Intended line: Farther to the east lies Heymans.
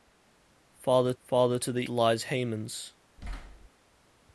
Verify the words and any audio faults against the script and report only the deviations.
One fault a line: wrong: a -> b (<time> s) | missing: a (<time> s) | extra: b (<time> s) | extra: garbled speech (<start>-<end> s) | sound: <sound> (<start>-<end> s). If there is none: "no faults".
extra: farther (1.2 s)
missing: east (1.8 s)
sound: thud (3.2-3.7 s)